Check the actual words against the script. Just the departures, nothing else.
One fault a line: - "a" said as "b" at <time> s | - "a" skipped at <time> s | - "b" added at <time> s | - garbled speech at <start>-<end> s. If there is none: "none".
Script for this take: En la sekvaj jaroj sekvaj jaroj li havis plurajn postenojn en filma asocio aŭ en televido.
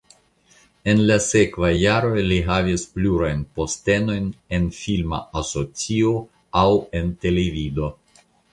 - "sekvaj jaroj" skipped at 2.2 s